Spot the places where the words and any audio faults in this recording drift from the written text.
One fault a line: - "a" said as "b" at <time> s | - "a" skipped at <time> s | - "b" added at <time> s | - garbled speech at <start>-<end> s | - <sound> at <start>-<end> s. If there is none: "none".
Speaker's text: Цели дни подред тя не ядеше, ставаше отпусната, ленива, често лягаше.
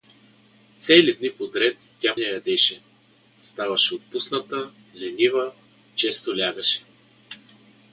none